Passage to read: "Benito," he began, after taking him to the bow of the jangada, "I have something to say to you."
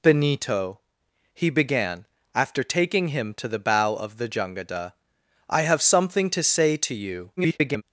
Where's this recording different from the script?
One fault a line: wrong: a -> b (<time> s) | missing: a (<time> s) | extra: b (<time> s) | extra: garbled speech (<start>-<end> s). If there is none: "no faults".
extra: garbled speech (7.4-7.8 s)